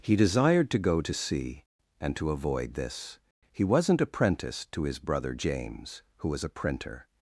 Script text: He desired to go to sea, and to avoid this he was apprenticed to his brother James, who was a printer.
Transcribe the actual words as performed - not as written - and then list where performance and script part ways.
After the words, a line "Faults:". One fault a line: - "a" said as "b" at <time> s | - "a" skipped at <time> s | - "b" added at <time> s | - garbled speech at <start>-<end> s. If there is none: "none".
He desired to go to sea, and to avoid this he wasn't apprenticed to his brother James, who was a printer.
Faults:
- "was" said as "wasn't" at 3.6 s